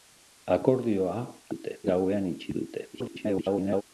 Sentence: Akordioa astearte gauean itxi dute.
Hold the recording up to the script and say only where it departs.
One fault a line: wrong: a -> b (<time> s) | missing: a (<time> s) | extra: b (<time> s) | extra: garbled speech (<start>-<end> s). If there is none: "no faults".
wrong: astearte -> dute (1.5 s)
extra: garbled speech (2.9-3.8 s)